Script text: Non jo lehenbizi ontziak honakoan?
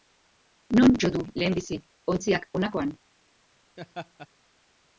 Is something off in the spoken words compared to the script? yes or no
yes